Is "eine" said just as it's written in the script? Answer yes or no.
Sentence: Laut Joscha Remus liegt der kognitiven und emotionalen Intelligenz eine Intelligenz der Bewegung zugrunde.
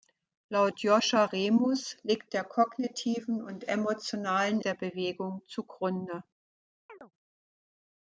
no